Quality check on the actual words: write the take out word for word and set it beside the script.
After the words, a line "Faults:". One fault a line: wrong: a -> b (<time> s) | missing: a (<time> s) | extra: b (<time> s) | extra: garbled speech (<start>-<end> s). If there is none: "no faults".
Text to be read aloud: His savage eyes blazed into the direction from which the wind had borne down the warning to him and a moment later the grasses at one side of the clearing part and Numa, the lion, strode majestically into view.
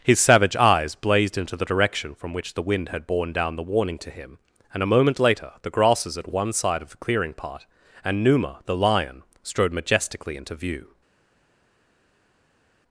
His savage eyes blazed into the direction from which the wind had borne down the warning to him and a moment later the grasses at one side of the clearing part and Numa, the lion, strode majestically into view.
Faults:
no faults